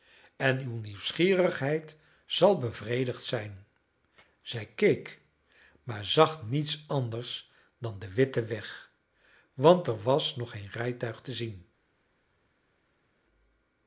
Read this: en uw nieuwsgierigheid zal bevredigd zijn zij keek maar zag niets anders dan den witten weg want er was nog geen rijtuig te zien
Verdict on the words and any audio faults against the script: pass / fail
pass